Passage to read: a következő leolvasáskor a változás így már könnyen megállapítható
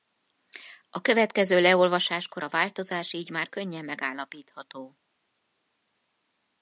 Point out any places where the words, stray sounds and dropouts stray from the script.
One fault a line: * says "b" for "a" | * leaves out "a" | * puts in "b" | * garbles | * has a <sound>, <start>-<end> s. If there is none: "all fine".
all fine